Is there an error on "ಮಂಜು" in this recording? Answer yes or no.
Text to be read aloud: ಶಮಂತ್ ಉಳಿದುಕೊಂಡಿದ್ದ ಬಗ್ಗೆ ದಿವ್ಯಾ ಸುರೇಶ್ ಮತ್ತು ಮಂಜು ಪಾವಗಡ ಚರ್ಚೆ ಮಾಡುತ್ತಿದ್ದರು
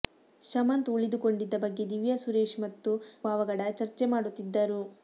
yes